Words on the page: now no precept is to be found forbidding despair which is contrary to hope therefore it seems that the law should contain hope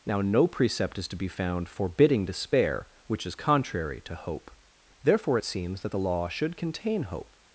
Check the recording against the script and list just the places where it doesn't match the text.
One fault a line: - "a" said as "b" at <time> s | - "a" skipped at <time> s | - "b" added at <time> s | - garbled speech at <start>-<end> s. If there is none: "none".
none